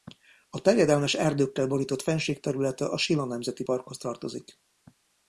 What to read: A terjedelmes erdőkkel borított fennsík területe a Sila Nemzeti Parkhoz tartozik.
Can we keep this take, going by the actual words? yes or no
yes